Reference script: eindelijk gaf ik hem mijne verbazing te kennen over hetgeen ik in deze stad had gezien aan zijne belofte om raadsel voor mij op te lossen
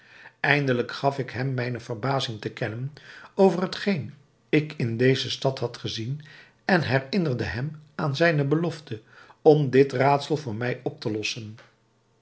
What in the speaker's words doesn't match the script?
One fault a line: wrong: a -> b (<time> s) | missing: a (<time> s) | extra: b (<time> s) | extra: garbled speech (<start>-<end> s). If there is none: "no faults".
extra: en herinnerde hem (6.7 s)
extra: dit (9.7 s)